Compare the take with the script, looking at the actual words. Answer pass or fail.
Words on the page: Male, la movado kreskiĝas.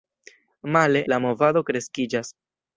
pass